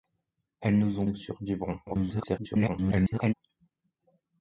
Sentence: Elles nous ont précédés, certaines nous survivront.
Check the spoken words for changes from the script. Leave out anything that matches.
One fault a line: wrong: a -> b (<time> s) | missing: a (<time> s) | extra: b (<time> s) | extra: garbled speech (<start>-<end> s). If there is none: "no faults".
missing: précédés certaines (1.1 s)
extra: garbled speech (1.9-3.3 s)